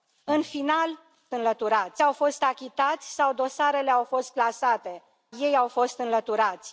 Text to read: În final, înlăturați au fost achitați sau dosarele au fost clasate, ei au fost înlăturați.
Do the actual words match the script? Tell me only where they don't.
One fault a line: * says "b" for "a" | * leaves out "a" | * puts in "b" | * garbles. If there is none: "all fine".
all fine